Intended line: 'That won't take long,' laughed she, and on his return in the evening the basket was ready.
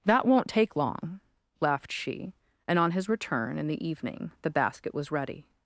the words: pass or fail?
pass